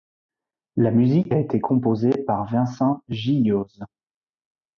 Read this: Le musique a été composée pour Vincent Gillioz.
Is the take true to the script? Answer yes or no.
no